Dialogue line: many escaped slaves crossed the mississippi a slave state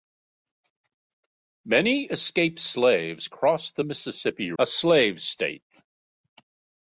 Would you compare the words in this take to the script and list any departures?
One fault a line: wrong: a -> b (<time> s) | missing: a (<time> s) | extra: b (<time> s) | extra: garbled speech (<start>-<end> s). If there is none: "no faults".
no faults